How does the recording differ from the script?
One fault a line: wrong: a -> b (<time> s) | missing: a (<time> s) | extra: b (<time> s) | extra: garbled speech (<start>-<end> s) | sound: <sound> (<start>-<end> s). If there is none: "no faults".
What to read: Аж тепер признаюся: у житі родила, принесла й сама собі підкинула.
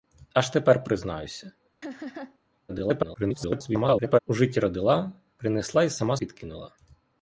sound: laugh (1.8-2.4 s)
extra: garbled speech (2.7-4.2 s)
missing: собі (6.2 s)